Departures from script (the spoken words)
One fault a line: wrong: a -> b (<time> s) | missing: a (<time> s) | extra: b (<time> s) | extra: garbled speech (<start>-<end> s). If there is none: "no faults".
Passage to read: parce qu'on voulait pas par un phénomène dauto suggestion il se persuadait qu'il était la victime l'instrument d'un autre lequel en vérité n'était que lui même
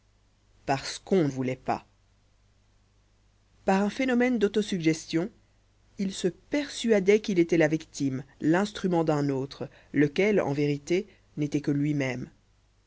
no faults